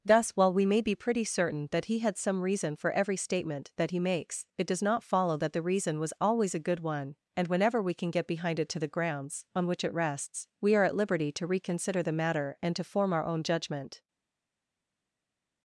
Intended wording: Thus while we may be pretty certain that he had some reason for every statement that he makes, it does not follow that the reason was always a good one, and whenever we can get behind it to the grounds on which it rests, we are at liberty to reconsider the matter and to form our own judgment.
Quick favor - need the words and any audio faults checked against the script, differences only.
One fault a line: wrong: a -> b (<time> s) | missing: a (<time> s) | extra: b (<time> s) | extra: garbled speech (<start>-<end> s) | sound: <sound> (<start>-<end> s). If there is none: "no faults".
no faults